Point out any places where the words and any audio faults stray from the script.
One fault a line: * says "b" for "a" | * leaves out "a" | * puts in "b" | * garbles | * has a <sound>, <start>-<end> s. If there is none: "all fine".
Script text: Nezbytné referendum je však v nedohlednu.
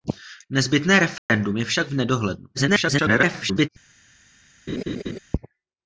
* has a dropout, 1.2-1.3 s
* garbles
* has a laugh, 4.7-5.2 s